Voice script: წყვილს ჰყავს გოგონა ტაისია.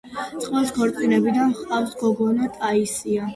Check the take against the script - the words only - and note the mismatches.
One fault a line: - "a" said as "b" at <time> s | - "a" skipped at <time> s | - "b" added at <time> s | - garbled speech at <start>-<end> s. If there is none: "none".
- "ქორწინებიდან" added at 0.7 s